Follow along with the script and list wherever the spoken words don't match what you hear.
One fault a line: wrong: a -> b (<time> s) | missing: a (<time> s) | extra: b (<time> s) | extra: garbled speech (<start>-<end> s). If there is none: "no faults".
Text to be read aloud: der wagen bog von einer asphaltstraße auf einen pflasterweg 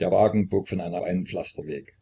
missing: asphaltstraße auf (1.0 s)